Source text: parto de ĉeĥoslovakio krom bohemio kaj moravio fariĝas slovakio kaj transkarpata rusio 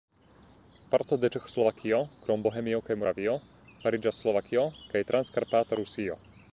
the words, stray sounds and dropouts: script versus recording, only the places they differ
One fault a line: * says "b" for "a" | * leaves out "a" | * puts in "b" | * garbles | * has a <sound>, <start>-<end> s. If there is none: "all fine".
all fine